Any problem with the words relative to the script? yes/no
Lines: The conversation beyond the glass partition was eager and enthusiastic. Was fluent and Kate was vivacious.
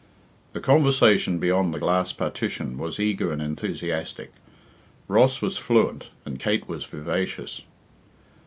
yes